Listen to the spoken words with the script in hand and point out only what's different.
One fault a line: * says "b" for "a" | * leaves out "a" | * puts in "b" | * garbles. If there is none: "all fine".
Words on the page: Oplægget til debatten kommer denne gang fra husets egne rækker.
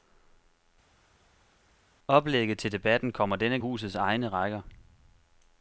* leaves out "gang fra"